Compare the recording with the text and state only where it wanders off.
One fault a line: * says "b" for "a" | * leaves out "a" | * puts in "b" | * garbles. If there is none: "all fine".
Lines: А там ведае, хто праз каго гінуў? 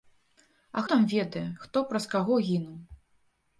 all fine